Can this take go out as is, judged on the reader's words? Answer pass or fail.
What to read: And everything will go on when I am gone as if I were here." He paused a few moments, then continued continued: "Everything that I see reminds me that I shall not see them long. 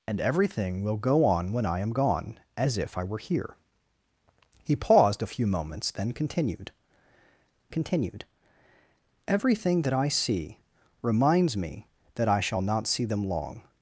pass